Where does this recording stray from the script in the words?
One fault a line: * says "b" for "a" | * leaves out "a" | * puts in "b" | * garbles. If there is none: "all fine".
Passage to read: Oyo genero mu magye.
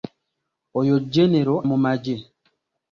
all fine